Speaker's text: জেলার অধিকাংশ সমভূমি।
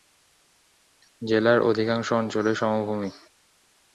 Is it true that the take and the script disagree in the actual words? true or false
true